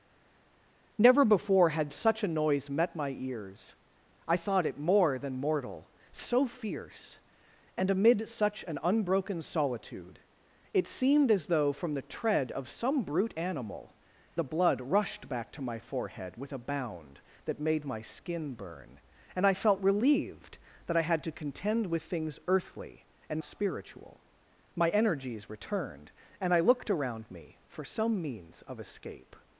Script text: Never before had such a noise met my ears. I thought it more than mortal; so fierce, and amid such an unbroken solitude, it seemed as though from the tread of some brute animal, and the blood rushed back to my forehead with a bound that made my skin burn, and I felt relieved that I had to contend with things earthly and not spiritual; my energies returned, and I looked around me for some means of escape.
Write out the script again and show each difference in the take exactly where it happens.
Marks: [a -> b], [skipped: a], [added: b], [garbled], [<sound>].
Never before had such a noise met my ears. I thought it more than mortal; so fierce, and amid such an unbroken solitude, it seemed as though from the tread of some brute animal, [skipped: and] the blood rushed back to my forehead with a bound that made my skin burn, and I felt relieved that I had to contend with things earthly and [skipped: not] spiritual; my energies returned, and I looked around me for some means of escape.